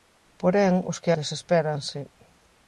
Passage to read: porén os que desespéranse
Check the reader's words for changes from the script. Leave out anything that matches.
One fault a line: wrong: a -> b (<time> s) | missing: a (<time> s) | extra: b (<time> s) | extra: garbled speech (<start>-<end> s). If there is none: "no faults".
no faults